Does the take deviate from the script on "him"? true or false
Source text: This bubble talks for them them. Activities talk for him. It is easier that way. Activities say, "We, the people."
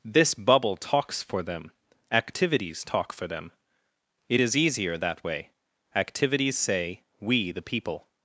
true